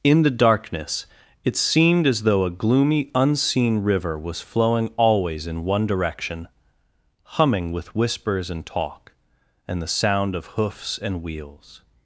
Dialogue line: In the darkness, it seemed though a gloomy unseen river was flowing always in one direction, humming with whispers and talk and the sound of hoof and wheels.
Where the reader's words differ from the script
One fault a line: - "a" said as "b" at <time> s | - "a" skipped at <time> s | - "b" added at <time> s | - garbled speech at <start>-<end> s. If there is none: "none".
- "as" added at 2.1 s
- "hoof" said as "hoofs" at 10.5 s